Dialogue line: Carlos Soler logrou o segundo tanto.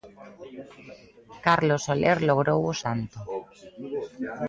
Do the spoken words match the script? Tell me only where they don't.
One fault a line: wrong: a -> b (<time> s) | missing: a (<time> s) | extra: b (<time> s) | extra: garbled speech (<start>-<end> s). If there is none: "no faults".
missing: segundo (2.8 s)